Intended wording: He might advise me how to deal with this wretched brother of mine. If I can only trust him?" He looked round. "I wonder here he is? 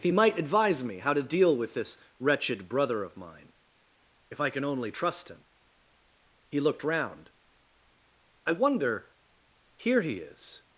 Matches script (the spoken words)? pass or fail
pass